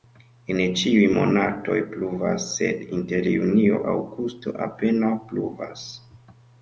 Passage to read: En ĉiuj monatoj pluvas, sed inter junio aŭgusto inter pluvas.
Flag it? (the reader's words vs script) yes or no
yes